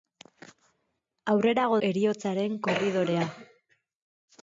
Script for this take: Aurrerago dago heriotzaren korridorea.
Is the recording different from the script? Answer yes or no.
yes